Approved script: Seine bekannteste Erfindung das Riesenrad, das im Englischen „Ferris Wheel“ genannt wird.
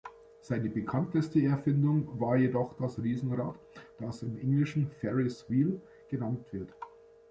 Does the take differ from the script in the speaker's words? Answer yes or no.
yes